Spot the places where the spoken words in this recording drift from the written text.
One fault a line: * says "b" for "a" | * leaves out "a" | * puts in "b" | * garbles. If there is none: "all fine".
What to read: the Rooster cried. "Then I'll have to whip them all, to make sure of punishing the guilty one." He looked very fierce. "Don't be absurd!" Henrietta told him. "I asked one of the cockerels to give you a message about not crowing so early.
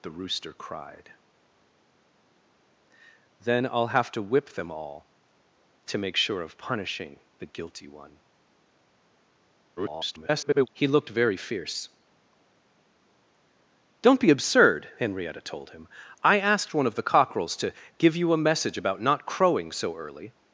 * garbles